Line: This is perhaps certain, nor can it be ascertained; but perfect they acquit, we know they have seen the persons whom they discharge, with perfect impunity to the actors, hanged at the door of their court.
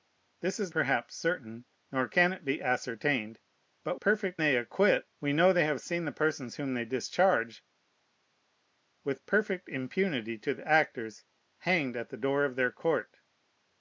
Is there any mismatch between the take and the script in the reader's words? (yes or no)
no